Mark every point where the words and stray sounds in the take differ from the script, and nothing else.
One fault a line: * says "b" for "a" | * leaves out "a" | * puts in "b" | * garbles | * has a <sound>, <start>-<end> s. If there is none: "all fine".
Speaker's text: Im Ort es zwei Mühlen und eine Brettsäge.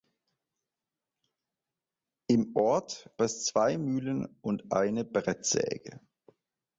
all fine